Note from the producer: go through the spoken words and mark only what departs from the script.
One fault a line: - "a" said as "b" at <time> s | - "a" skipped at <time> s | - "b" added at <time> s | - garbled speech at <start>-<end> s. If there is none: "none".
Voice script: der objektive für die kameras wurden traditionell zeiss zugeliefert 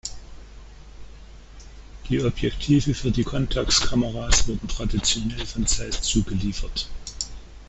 - "der" said as "die" at 2.1 s
- "contax" added at 3.2 s
- "von" added at 5.4 s